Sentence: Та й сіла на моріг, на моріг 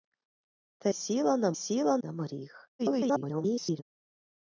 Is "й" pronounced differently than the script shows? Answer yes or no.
yes